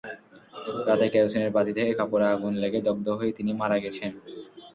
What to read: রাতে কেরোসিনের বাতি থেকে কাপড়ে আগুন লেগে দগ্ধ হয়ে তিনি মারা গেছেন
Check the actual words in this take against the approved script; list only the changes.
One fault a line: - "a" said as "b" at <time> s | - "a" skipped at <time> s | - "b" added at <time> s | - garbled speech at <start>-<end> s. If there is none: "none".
none